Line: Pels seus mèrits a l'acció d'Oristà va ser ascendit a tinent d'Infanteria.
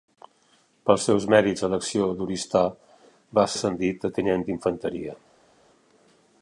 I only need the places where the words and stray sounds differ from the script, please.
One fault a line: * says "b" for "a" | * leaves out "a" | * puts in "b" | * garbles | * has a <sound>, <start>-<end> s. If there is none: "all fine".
* leaves out "ser"